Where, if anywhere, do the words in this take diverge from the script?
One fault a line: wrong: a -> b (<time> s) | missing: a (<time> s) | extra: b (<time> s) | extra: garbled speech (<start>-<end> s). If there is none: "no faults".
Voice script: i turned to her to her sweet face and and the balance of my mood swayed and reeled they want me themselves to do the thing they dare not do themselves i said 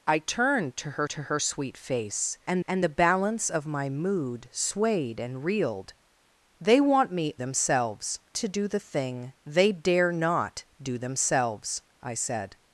no faults